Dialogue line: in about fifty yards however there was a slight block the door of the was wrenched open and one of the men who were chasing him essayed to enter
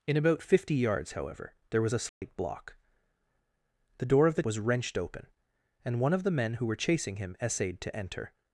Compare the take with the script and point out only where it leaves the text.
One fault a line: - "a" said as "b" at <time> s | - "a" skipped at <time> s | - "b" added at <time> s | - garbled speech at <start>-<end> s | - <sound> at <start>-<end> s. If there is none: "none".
- dropout at 2.1-2.2 s